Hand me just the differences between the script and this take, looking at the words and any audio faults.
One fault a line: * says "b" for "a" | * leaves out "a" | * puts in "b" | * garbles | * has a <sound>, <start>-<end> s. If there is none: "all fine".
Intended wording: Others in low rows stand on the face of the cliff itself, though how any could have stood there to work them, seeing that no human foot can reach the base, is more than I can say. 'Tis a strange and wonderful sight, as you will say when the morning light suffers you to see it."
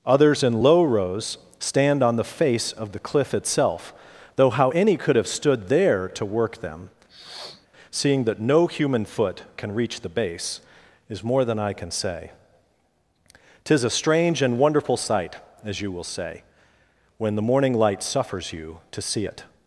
* has a sniff, 7.1-7.7 s